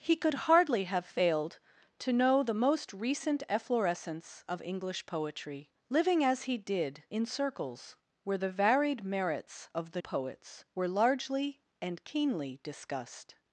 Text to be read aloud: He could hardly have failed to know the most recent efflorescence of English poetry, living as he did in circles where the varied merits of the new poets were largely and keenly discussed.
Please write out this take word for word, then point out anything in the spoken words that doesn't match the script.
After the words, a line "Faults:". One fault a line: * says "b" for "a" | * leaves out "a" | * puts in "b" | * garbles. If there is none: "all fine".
He could hardly have failed to know the most recent efflorescence of English poetry, living as he did in circles where the varied merits of the poets were largely and keenly discussed.
Faults:
* leaves out "new"